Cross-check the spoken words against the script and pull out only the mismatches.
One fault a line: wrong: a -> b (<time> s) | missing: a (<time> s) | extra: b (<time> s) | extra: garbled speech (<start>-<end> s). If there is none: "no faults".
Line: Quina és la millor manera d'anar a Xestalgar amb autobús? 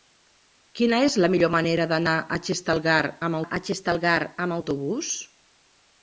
extra: a Xestalgar amb (3.4 s)